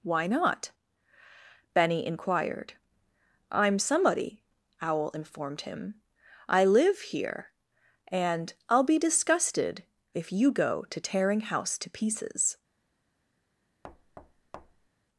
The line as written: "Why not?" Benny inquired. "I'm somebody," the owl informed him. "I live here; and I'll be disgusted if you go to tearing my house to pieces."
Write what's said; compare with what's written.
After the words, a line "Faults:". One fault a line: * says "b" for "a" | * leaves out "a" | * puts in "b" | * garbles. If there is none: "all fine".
"Why not?" Benny inquired. "I'm somebody," owl informed him. "I live here; and I'll be disgusted if you go to tearing house to pieces."
Faults:
* leaves out "the"
* leaves out "my"